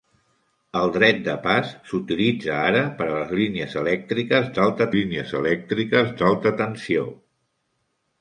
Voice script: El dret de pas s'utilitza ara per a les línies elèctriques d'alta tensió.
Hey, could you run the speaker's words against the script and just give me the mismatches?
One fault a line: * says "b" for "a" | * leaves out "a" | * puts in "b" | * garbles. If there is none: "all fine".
* puts in "línies elèctriques d'alta"